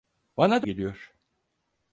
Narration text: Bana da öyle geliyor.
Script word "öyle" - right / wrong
wrong